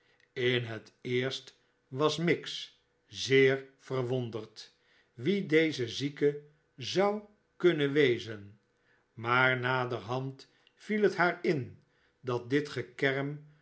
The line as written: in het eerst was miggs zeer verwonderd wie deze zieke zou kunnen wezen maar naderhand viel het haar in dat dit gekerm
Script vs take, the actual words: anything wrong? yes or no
no